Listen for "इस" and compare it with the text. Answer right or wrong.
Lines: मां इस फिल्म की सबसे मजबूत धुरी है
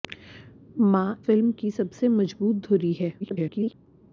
wrong